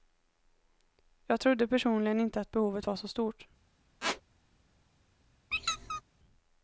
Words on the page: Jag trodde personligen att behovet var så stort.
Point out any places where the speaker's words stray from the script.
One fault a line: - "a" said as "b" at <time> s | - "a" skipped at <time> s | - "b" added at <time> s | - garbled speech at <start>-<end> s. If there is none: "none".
- "inte" added at 2.2 s